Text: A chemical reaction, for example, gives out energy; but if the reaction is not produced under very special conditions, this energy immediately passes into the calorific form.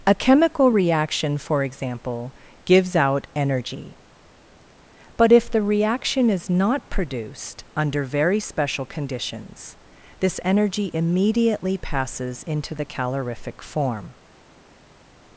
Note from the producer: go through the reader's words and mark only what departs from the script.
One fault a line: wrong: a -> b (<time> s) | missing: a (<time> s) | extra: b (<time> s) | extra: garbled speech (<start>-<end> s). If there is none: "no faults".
no faults